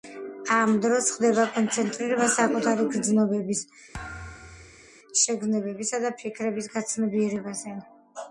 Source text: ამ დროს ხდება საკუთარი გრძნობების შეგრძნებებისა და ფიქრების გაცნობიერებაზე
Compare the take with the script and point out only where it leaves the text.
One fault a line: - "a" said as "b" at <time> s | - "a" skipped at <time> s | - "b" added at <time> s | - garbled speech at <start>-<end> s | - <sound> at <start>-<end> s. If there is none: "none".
- "კონცენტრირება" added at 1.6 s
- thud at 3.9-4.9 s